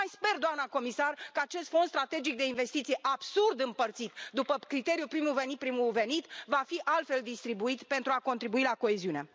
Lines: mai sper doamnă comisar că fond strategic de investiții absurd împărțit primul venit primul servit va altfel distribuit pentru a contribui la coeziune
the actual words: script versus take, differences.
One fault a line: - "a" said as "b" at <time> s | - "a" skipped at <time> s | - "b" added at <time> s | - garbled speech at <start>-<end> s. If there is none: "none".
- "acest" added at 1.4 s
- "după criteriul" added at 4.3 s
- "fi" added at 6.7 s